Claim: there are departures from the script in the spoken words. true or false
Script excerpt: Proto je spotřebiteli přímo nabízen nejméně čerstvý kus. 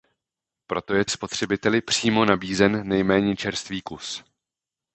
false